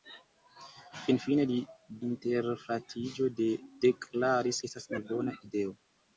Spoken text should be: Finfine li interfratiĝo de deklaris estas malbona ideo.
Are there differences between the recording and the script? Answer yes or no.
no